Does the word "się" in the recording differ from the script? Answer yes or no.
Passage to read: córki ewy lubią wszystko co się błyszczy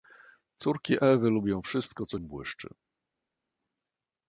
yes